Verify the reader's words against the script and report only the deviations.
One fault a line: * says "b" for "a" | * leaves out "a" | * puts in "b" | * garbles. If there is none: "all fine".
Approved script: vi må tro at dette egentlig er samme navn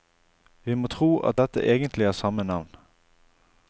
all fine